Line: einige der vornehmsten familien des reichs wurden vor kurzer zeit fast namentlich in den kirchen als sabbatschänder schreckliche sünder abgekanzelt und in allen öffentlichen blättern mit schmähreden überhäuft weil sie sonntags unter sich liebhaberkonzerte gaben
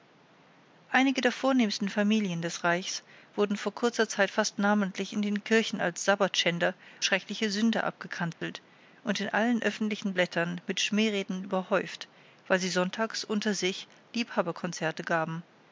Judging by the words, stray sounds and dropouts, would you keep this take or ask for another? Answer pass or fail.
fail